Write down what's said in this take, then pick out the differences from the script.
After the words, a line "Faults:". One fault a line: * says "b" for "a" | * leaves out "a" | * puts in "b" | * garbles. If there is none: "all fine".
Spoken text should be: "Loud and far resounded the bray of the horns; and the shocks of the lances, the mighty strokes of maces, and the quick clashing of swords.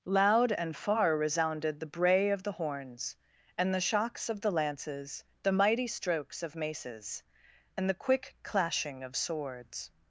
"Loud and far resounded the bray of the horns; and the shocks of the lances, the mighty strokes of maces, and the quick clashing of swords.
Faults:
all fine